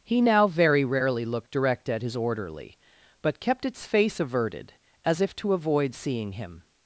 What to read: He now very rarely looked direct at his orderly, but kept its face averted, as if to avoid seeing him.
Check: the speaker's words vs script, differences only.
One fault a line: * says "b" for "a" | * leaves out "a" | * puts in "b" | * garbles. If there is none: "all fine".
all fine